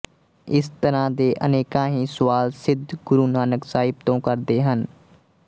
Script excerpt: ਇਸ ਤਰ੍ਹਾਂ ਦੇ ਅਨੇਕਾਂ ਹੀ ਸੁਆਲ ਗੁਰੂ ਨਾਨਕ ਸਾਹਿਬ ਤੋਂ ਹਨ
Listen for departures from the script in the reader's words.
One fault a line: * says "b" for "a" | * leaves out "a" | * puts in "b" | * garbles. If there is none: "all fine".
* puts in "ਸਿੱਧ"
* puts in "ਕਰਦੇ"